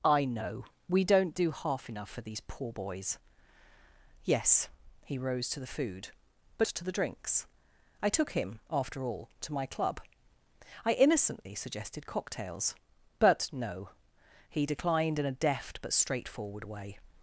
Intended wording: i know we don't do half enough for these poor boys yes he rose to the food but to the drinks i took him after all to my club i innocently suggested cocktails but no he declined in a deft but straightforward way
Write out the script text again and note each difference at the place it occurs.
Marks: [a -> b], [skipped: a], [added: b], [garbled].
i know we don't do half enough for these poor boys yes he rose to the food but to the drinks i took him after all to my club i innocently suggested cocktails but no he declined in a deft but straightforward way